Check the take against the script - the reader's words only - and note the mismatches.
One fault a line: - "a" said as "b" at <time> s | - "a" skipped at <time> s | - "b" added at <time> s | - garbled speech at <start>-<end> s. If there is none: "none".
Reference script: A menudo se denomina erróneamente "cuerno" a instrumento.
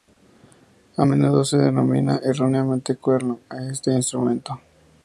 - "este" added at 3.6 s